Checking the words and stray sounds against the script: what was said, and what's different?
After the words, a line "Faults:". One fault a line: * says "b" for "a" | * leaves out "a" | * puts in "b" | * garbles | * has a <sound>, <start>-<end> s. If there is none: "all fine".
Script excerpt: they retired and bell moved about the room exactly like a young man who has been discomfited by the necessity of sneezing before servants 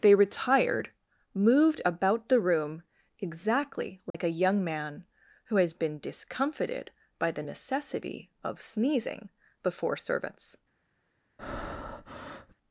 they retired moved about the room exactly like a young man who has been discomfited by the necessity of sneezing before servants
Faults:
* leaves out "and bell"
* has a dropout, 4.1-4.1 s
* has a breath, 11.4-12.5 s